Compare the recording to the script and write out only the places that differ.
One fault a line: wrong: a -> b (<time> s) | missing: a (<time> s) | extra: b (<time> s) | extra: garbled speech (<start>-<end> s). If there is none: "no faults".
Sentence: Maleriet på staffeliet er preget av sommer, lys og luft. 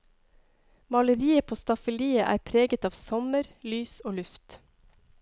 no faults